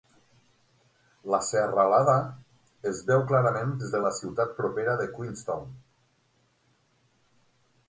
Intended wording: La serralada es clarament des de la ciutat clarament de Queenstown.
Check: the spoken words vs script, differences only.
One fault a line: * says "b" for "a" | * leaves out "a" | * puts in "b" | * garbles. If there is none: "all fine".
* puts in "veu"
* says "propera" for "clarament"